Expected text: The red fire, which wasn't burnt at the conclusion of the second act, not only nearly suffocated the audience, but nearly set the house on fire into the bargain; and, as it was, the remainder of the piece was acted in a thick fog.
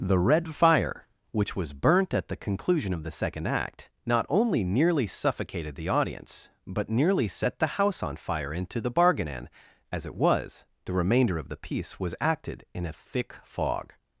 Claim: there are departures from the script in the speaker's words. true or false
true